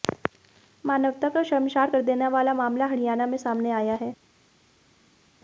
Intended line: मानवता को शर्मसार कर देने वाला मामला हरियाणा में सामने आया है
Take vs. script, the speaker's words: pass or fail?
pass